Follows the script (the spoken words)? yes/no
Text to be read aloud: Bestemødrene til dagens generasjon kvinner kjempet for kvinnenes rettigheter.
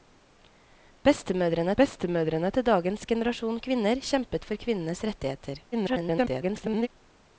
no